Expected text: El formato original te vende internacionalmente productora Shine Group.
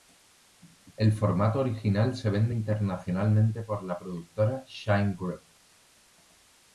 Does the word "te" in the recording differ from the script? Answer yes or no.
yes